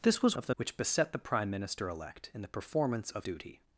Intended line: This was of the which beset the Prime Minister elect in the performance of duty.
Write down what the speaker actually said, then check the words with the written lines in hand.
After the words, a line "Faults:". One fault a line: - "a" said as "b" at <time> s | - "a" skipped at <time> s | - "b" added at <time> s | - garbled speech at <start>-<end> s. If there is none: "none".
This was of the which beset the Prime Minister elect in the performance of duty.
Faults:
none